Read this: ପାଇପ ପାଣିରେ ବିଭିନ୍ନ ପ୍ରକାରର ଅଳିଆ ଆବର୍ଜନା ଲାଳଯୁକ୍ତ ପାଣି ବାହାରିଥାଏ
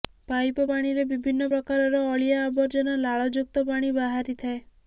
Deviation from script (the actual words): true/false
false